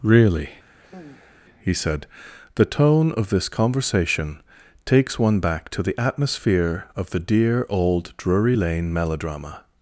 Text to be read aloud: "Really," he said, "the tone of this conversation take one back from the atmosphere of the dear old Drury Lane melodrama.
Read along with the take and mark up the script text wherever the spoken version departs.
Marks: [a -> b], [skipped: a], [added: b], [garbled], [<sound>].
"Really," [sigh] he said, "the tone of this conversation [take -> takes] one back [from -> to] the atmosphere of the dear old Drury Lane melodrama.